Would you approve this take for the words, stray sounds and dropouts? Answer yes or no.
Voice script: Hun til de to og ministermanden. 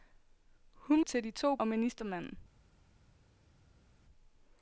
yes